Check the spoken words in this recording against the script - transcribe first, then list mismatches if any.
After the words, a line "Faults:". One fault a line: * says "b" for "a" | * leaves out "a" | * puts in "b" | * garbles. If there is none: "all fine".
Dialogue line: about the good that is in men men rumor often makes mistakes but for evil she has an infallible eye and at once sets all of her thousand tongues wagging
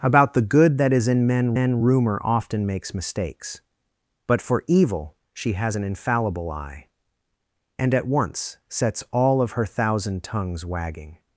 about the good that is in men men rumor often makes mistakes but for evil she has an infallible eye and at once sets all of her thousand tongues wagging
Faults:
all fine